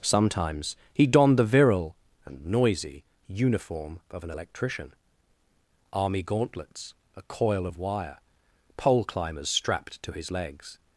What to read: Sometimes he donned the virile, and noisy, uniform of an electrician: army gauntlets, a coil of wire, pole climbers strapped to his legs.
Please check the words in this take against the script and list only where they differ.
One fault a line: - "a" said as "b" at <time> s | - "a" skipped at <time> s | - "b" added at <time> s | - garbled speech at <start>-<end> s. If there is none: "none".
none